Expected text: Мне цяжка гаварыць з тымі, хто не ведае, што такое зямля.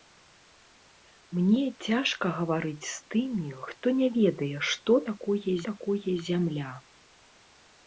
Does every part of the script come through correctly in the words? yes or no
no